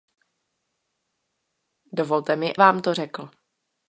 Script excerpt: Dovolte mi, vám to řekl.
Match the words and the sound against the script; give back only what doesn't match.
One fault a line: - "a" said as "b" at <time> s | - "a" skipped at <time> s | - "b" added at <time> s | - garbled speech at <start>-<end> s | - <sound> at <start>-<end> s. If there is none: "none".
none